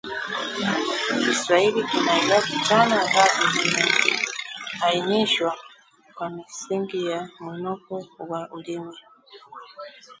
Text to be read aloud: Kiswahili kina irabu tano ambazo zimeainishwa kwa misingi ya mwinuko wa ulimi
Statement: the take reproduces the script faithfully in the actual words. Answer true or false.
true